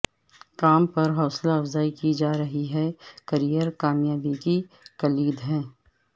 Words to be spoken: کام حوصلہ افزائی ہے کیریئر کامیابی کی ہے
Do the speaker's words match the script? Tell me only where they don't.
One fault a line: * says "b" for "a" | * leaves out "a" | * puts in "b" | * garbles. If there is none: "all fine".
* puts in "پر"
* puts in "کی جا رہی"
* puts in "کلید"